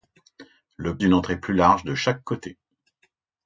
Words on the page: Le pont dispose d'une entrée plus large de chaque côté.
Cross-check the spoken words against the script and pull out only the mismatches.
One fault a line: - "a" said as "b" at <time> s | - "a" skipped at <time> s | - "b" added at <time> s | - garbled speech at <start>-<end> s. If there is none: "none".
- "pont dispose" skipped at 1.0 s